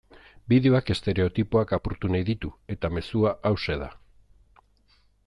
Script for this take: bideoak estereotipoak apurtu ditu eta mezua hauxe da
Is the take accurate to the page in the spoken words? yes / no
no